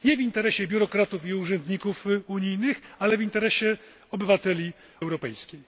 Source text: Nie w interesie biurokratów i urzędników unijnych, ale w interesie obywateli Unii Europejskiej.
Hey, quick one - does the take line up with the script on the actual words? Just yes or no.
no